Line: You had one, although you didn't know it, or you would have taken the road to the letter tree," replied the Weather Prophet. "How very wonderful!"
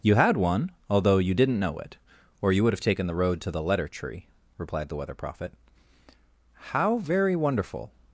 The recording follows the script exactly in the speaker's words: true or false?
true